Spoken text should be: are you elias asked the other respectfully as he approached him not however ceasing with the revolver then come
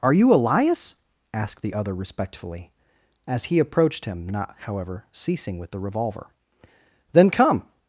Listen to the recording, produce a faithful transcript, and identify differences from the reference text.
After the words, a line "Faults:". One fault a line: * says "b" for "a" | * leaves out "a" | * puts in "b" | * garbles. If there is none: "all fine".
are you elias asked the other respectfully as he approached him not however ceasing with the revolver then come
Faults:
all fine